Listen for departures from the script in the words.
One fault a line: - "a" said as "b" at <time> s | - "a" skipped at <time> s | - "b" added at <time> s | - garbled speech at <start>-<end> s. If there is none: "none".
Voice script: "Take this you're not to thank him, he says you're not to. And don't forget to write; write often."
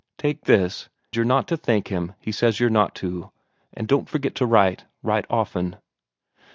none